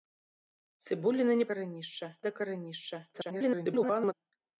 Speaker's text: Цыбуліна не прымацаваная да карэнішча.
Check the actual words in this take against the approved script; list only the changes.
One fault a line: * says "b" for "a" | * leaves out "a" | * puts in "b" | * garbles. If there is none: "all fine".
* says "карэнішча" for "прымацаваная"
* garbles